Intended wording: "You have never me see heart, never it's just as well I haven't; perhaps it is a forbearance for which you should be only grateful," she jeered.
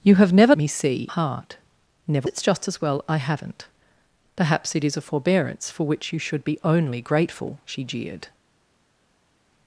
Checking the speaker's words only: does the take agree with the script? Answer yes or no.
yes